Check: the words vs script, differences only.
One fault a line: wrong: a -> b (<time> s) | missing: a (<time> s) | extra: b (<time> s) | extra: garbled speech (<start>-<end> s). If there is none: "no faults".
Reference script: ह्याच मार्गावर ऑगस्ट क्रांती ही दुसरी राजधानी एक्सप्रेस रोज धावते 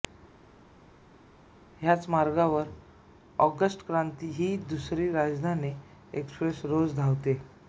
no faults